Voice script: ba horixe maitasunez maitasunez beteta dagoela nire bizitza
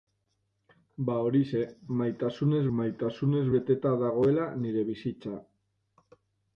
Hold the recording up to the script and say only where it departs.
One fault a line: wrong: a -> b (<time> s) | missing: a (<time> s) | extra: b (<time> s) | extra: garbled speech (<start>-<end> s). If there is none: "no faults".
no faults